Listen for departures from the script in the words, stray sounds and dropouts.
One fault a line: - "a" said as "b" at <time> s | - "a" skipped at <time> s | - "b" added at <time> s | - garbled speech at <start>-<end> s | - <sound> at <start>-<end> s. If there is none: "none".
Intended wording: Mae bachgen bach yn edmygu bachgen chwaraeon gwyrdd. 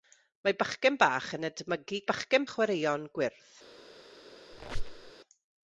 - squeak at 4.5-5.1 s